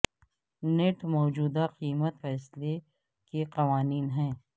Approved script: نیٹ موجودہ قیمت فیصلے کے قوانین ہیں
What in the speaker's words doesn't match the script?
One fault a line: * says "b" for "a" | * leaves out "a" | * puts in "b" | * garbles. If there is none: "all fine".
all fine